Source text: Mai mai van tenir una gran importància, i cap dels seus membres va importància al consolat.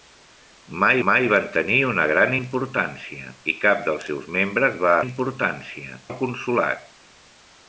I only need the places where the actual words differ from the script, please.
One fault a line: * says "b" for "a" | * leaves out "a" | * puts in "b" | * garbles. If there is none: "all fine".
all fine